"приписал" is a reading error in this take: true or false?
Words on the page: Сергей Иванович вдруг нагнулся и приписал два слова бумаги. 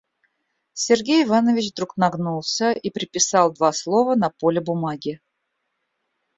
false